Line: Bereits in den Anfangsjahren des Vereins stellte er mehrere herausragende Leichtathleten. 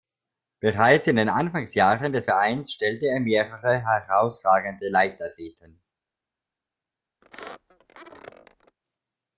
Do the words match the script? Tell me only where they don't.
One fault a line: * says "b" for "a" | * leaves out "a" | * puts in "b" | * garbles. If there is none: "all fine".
all fine